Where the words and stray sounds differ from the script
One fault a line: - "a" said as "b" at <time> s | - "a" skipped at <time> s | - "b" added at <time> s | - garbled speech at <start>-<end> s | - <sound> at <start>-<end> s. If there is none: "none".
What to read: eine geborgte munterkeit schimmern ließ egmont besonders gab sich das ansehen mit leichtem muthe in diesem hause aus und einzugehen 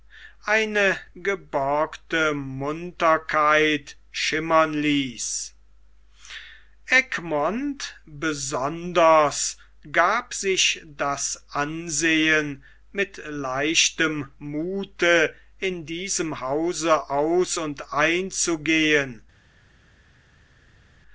none